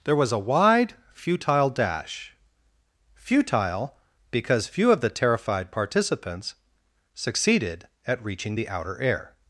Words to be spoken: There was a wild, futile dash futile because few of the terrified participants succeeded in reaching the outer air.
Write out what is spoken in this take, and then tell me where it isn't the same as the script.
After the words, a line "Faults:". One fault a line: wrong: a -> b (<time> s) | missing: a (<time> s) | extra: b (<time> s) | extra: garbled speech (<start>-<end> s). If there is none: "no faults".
There was a wide, futile dash futile because few of the terrified participants succeeded at reaching the outer air.
Faults:
wrong: wild -> wide (0.4 s)
wrong: in -> at (8.0 s)